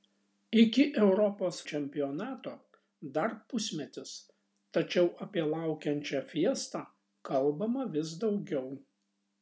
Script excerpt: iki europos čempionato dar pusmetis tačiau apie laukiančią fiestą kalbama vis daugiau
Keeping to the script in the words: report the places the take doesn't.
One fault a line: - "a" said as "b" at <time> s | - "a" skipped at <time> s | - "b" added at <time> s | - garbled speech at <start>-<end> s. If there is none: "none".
none